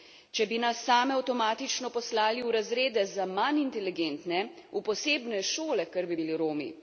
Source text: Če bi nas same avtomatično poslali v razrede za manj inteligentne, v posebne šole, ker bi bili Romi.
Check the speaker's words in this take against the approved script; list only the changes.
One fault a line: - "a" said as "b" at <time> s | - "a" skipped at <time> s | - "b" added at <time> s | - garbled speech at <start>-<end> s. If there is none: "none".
none